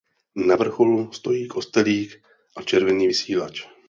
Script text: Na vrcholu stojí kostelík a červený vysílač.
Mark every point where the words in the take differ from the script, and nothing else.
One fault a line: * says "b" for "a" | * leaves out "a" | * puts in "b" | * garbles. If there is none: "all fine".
all fine